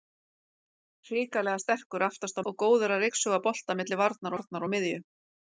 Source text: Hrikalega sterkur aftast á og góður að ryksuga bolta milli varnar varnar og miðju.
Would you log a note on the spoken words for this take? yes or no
no